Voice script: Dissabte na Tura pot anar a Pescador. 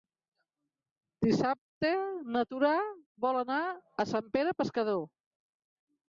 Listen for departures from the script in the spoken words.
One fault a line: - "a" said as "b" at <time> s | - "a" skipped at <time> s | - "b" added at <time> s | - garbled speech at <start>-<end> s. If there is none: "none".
- "pot" said as "vol" at 3.2 s
- "Sant Pere" added at 4.1 s